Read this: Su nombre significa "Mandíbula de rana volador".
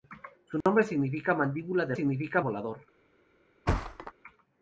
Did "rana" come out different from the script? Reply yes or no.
yes